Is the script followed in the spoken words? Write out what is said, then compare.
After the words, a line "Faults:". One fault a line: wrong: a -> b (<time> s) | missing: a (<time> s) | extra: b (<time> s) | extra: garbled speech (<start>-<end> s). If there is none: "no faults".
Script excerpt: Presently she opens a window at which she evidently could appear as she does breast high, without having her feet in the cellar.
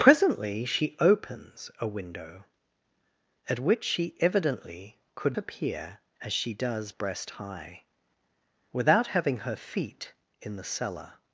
Presently she opens a window at which she evidently could appear as she does breast high, without having her feet in the cellar.
Faults:
no faults